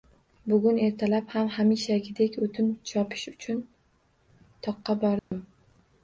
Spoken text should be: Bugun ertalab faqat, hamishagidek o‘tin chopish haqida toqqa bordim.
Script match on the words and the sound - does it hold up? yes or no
no